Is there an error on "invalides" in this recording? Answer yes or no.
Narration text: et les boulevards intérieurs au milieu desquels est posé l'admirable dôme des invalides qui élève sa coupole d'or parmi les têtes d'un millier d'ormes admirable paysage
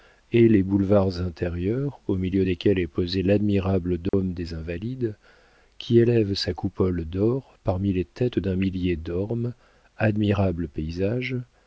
no